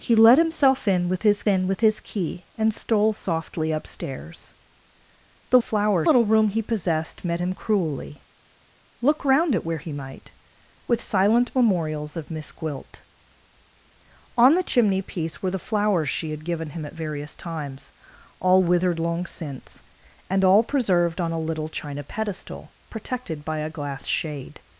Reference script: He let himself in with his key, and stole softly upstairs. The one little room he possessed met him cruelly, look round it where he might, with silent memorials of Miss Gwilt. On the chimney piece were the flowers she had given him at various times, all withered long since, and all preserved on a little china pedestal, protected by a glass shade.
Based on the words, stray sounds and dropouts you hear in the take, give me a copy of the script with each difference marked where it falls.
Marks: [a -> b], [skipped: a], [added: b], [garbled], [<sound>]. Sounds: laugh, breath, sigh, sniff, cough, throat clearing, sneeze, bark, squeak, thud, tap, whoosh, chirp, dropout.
He let himself in with his [added: in with his] key, and stole softly upstairs. The [one -> flowers] little room he possessed met him cruelly, look round it where he might, with silent memorials of Miss Gwilt. On the chimney piece were the flowers she had given him at various times, all withered long since, and all preserved on a little china pedestal, protected by a glass shade.